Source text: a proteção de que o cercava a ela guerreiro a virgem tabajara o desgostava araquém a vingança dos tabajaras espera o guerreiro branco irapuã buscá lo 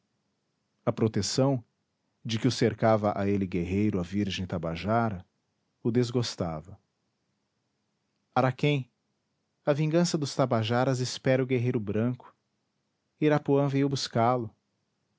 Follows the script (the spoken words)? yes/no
no